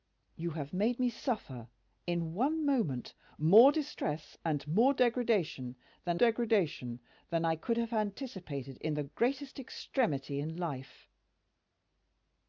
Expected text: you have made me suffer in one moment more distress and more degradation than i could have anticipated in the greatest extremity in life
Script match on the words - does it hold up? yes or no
no